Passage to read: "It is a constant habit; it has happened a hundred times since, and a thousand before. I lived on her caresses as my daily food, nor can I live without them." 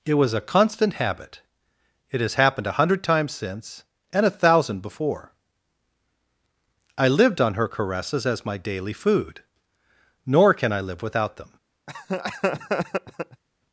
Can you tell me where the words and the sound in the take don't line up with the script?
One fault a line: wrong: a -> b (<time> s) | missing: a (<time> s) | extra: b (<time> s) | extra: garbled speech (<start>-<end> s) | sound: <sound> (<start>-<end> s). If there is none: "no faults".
wrong: is -> was (0.1 s)
sound: laugh (11.9-13.4 s)